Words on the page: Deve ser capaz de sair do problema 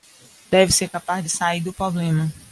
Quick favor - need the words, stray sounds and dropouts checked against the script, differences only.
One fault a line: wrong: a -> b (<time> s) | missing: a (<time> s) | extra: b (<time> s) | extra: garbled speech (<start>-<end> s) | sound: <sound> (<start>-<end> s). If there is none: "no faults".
no faults